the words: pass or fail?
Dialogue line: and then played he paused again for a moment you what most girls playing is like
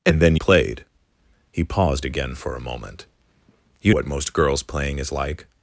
pass